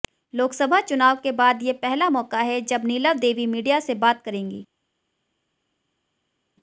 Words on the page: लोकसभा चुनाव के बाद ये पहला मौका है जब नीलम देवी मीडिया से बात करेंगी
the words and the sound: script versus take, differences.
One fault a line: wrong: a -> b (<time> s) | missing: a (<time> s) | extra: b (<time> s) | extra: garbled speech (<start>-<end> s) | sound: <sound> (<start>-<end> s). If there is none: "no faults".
no faults